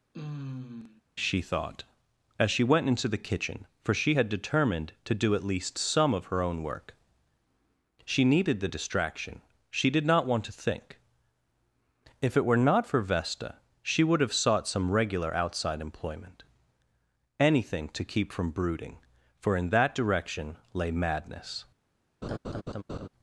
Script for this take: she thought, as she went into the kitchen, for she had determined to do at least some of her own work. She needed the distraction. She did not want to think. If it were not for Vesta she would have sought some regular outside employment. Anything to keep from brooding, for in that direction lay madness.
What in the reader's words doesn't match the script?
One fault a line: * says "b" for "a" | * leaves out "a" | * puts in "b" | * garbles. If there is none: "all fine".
all fine